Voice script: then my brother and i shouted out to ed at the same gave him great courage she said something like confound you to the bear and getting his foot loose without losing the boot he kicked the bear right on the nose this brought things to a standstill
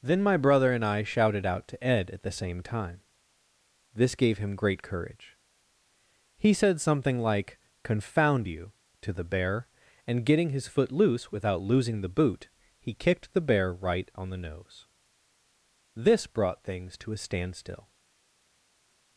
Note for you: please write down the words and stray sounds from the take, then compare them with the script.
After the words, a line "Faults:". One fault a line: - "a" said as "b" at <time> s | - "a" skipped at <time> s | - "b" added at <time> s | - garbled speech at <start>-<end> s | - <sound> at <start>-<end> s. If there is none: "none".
then my brother and i shouted out to ed at the same time this gave him great courage he said something like confound you to the bear and getting his foot loose without losing the boot he kicked the bear right on the nose this brought things to a standstill
Faults:
- "time this" added at 2.6 s
- "she" said as "he" at 6.3 s